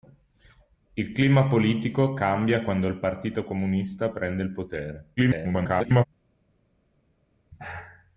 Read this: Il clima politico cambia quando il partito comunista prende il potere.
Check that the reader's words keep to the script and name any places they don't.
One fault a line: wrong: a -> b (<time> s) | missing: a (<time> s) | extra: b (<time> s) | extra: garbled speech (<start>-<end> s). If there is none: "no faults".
extra: garbled speech (5.2-6.0 s)